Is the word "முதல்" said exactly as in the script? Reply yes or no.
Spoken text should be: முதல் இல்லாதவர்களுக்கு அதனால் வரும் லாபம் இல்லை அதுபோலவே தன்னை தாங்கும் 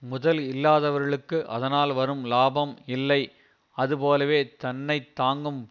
yes